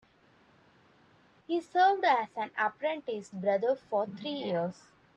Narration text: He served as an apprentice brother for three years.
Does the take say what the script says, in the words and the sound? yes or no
yes